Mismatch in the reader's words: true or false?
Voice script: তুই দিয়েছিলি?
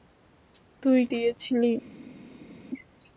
false